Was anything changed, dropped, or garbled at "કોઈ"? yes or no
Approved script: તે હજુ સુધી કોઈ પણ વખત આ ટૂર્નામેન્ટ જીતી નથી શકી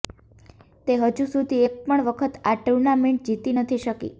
yes